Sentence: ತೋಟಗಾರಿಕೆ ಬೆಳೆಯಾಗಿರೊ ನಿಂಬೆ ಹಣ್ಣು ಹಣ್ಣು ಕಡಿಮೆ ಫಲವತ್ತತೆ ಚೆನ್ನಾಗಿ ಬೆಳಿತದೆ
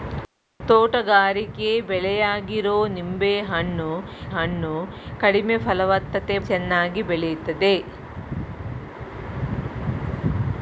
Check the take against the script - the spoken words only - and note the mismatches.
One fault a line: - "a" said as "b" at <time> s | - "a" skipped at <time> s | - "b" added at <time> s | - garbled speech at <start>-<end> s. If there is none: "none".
none